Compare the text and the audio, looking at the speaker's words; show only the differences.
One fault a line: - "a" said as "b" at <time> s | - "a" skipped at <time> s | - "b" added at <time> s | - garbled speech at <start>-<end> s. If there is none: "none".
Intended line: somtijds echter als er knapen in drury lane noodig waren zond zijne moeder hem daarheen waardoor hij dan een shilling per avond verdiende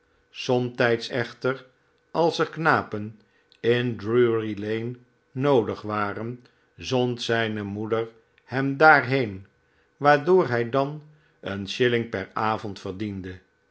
none